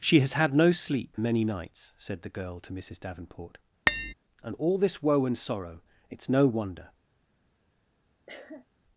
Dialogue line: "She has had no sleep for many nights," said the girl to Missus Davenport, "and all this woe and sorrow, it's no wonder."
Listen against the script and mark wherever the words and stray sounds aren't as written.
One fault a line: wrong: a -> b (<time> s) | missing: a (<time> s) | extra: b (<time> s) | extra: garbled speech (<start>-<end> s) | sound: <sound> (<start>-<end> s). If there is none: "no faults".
missing: for (1.1 s)
sound: tap (3.9-4.1 s)
sound: cough (8.3-8.7 s)